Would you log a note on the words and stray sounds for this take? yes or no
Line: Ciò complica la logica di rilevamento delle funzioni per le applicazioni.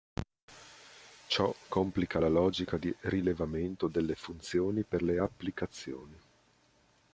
no